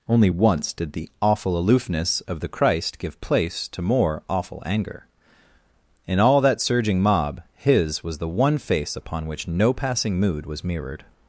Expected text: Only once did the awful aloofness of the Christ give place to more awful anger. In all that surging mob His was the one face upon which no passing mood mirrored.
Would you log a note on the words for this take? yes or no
yes